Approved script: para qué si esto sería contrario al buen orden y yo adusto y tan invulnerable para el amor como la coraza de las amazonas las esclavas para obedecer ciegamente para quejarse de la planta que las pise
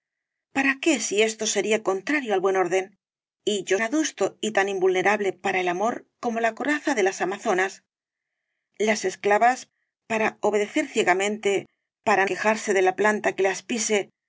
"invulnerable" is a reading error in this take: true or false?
false